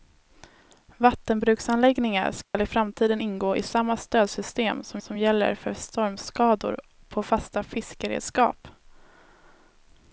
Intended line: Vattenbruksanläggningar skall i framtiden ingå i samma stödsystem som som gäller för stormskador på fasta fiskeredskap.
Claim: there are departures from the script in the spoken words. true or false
false